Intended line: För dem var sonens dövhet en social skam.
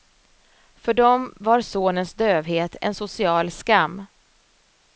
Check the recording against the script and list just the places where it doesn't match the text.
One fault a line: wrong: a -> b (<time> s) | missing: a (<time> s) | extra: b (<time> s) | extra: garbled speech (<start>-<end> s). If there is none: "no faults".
no faults